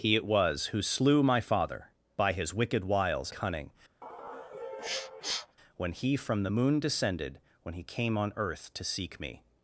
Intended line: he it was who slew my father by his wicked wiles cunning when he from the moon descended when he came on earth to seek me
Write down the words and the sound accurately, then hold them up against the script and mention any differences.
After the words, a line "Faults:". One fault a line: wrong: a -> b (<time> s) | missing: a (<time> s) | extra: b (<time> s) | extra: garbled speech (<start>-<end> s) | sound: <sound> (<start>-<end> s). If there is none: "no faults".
he it was who slew my father by his wicked wiles cunning when he from the moon descended when he came on earth to seek me
Faults:
sound: sniff (4.0-5.6 s)